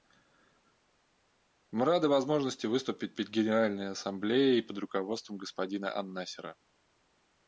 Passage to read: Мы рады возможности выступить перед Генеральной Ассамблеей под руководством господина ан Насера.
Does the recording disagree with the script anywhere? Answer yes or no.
no